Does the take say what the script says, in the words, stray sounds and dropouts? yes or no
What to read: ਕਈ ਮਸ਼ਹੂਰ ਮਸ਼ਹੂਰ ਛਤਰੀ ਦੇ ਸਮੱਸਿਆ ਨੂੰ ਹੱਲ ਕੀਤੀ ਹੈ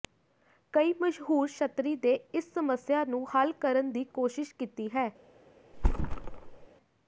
no